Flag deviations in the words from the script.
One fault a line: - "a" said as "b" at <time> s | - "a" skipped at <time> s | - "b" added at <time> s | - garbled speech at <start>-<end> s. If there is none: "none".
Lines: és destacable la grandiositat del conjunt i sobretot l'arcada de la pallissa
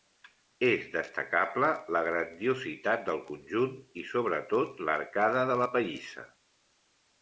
none